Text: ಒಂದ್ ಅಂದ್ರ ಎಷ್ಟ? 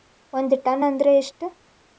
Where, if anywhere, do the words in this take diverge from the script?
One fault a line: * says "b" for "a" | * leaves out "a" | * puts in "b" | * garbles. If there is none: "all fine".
* puts in "ಟನ್"